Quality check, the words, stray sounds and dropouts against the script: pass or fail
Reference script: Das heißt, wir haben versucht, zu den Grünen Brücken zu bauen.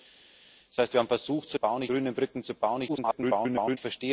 fail